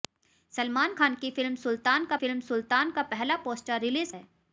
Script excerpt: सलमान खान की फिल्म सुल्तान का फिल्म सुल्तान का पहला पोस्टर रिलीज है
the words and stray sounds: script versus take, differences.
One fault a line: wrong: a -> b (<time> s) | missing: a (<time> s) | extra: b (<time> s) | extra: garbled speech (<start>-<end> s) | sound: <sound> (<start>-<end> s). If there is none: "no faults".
no faults